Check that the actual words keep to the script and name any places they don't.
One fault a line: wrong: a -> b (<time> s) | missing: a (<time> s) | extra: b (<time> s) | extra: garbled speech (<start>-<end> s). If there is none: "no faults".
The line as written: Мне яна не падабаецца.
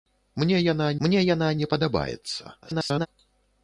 extra: мне яна (1.1 s)
extra: garbled speech (2.6-3.1 s)